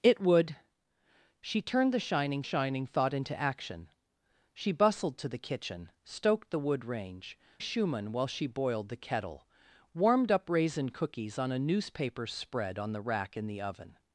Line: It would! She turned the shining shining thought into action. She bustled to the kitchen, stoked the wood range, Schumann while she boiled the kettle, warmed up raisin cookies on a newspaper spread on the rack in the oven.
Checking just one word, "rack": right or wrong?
right